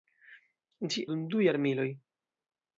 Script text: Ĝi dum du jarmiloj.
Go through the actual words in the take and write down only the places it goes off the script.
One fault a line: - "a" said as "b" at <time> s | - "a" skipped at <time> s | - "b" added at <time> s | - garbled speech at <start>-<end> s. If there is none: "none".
none